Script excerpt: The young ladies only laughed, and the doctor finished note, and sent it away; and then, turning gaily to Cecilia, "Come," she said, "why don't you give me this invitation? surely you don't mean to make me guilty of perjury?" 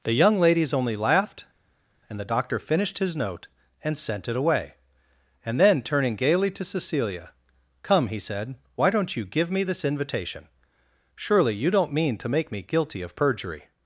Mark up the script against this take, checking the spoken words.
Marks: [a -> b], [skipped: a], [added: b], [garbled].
The young ladies only laughed, and the doctor finished [added: his] note, and sent it away; and then, turning gaily to Cecilia, "Come," [she -> he] said, "why don't you give me this invitation? surely you don't mean to make me guilty of perjury?"